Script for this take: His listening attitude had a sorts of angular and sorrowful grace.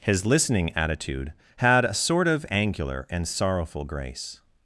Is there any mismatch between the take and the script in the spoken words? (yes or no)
yes